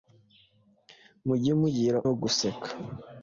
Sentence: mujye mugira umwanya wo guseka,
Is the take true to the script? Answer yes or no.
no